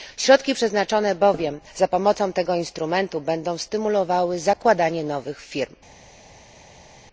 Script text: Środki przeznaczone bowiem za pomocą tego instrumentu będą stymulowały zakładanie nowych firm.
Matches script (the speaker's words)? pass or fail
pass